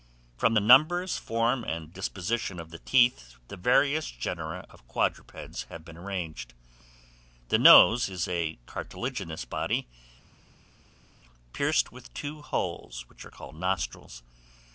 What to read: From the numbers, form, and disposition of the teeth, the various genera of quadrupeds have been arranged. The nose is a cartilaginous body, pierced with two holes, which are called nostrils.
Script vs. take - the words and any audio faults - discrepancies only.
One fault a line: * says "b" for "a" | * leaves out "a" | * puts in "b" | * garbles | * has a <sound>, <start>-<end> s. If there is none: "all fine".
all fine